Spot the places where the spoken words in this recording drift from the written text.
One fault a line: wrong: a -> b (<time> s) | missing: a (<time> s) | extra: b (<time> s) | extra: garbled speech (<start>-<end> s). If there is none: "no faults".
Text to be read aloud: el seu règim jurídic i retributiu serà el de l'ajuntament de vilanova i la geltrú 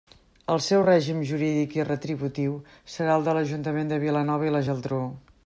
no faults